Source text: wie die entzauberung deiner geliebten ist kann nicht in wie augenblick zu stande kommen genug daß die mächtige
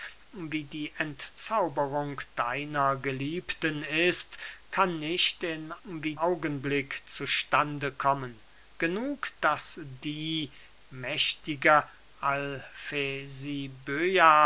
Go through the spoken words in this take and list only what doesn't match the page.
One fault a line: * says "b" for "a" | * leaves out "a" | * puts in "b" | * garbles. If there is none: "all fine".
all fine